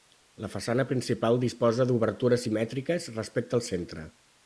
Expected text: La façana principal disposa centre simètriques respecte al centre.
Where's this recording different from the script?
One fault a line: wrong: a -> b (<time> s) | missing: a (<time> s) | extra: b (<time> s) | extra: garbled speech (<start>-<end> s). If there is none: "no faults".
wrong: centre -> d'obertures (1.9 s)